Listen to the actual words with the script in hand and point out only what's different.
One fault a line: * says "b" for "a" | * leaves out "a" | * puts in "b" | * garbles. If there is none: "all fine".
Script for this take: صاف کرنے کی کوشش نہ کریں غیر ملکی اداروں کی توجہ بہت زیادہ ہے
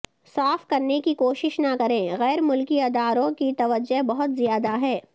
all fine